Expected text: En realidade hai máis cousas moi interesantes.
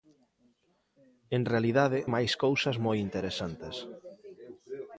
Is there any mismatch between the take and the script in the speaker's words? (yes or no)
yes